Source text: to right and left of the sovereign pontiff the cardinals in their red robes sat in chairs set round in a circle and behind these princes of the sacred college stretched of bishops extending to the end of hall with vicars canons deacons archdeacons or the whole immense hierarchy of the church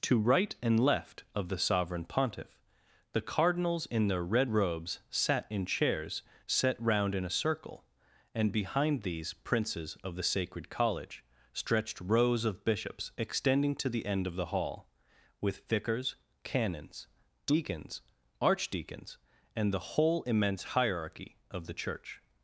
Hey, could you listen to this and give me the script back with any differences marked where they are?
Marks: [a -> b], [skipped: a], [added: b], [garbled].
to right and left of the sovereign pontiff the cardinals in their red robes sat in chairs set round in a circle and behind these princes of the sacred college stretched [added: rows] of bishops extending to the end of [added: the] hall with vicars canons deacons archdeacons [or -> and] the whole immense hierarchy of the church